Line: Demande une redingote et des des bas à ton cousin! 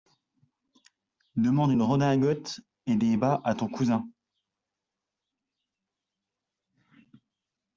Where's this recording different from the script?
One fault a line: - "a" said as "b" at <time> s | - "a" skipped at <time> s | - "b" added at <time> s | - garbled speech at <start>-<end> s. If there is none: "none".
- "des" skipped at 3.2 s